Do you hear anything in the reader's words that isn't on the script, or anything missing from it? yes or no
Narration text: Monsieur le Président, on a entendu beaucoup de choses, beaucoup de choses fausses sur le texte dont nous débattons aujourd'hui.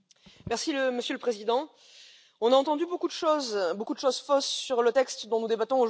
no